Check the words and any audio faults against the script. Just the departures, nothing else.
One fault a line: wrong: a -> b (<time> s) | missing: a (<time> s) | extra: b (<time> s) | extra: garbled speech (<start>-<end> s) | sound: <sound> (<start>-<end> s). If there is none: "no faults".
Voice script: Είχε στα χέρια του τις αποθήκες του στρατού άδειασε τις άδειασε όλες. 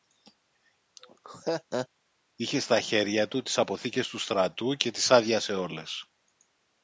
sound: laugh (1.0-1.9 s)
wrong: άδειασε -> και (4.7 s)